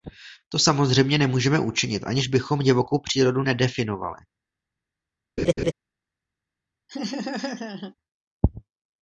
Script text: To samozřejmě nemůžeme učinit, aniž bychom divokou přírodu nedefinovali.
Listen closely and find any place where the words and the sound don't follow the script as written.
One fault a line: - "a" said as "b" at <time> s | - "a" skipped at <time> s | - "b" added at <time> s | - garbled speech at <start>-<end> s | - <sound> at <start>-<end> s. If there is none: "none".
- laugh at 5.4-5.7 s
- laugh at 6.9-8.0 s